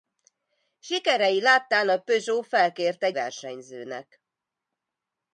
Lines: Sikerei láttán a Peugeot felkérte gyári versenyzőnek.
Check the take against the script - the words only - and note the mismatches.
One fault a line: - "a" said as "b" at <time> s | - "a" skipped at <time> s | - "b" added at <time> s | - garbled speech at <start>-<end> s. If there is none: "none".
- "gyári" skipped at 3.1 s